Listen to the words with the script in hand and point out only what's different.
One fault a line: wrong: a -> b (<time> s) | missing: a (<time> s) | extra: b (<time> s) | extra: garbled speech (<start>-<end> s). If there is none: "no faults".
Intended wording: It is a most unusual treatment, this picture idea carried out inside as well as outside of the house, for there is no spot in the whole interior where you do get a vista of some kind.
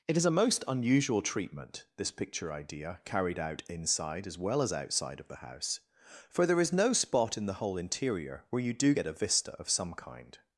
no faults